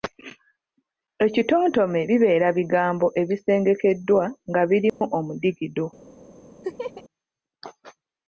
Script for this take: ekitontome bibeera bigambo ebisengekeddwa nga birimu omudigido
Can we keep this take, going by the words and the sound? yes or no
no